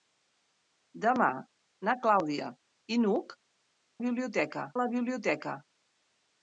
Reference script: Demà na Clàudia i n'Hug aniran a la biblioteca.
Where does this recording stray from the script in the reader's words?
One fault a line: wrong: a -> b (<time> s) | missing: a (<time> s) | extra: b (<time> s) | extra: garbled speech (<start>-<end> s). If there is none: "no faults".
wrong: aniran -> biblioteca (4.1 s)